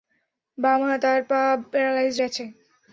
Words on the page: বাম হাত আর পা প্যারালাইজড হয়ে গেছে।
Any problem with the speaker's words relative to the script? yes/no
yes